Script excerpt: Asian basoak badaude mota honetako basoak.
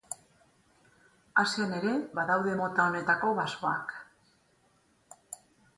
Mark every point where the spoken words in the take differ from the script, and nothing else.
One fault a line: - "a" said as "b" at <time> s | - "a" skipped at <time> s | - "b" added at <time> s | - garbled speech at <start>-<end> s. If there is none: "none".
- "basoak" said as "ere" at 1.8 s